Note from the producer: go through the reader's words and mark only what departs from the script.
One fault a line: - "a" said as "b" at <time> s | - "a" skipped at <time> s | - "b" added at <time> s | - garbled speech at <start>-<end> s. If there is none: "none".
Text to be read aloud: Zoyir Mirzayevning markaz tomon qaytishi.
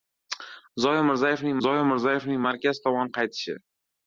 - "zoyir Mirzayevning" added at 1.7 s